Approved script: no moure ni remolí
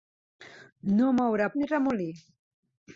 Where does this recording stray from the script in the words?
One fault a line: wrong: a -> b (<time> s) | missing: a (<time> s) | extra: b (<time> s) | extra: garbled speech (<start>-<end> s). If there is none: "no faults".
no faults